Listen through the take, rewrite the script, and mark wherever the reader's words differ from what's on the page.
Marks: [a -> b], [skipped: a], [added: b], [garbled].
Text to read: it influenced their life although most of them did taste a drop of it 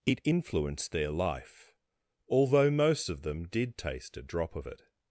it influenced their life although most of them did taste a drop of it